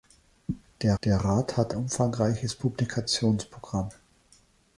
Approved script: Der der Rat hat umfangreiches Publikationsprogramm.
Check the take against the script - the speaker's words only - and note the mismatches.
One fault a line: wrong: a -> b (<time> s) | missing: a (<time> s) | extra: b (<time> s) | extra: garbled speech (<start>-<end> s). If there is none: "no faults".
no faults